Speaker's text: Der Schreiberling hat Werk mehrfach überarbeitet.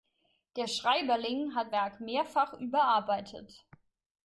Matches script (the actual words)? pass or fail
pass